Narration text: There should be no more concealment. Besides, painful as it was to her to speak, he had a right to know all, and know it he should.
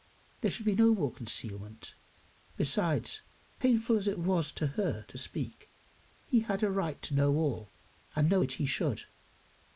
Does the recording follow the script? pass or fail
pass